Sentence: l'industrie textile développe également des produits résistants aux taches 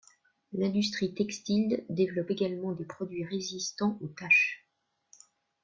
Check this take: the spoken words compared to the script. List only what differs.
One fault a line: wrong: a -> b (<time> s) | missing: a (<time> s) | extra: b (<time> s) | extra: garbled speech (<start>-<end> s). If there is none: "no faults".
no faults